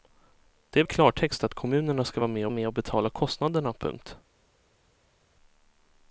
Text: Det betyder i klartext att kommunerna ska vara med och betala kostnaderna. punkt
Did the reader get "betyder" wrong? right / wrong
wrong